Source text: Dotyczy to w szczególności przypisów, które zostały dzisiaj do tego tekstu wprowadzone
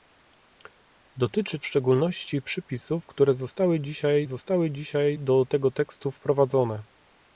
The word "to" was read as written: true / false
false